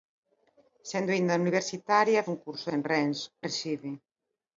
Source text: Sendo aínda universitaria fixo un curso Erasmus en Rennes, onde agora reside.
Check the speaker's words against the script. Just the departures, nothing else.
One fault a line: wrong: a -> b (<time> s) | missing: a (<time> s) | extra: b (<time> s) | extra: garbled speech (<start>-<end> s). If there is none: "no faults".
missing: fixo (2.3 s)
missing: Erasmus (2.7 s)
missing: onde agora (3.2 s)